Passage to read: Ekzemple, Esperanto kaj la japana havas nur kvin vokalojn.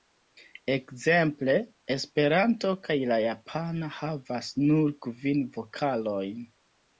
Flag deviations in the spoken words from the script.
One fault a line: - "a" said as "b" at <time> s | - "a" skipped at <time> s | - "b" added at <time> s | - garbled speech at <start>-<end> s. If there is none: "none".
none